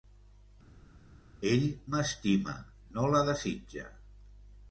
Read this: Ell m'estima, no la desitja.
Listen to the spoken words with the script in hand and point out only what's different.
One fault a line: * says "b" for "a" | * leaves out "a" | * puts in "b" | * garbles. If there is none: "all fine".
all fine